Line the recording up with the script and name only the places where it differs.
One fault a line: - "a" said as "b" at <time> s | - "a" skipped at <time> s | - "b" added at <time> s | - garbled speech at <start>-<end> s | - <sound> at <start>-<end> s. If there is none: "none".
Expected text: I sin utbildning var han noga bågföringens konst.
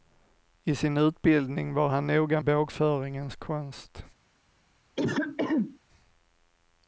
- throat clearing at 5.0-5.8 s